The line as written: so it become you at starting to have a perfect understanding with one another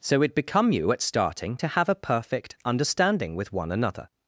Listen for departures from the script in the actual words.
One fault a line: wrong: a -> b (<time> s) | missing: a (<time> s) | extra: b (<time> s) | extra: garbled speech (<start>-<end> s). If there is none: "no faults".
no faults